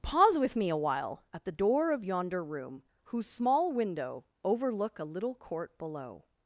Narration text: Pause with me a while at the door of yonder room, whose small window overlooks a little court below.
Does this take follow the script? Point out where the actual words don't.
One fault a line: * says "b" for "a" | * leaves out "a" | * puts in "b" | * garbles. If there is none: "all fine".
* says "overlook" for "overlooks"